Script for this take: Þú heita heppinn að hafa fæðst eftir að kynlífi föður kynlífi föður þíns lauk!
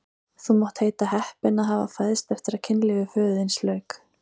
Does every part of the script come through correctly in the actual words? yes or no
no